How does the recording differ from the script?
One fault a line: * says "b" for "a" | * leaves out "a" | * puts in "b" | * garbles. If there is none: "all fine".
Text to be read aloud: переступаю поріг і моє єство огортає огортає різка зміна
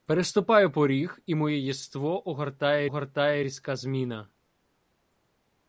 all fine